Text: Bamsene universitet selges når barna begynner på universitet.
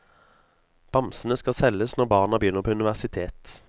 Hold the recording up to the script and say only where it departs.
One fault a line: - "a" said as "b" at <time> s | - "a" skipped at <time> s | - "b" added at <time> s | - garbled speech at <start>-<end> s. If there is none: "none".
- "universitet" said as "skal" at 1.4 s